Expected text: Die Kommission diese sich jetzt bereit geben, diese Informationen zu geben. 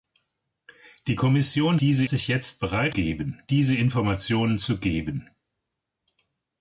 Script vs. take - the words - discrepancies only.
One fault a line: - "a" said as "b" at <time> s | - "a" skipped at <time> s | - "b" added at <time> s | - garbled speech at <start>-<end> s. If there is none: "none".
none